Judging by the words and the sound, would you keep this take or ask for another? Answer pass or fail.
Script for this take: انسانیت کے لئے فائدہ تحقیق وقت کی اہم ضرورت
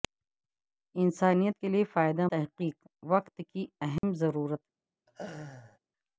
fail